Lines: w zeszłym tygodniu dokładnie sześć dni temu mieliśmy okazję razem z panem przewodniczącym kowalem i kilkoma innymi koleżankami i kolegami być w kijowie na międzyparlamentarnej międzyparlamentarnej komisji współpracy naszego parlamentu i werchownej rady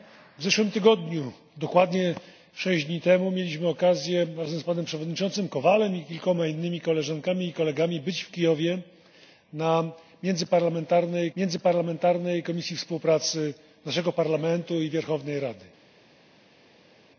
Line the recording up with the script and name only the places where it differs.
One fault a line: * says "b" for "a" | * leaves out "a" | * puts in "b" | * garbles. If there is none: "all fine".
all fine